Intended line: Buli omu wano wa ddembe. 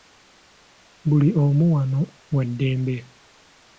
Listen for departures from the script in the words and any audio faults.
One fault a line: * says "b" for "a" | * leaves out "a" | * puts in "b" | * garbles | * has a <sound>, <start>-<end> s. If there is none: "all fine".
all fine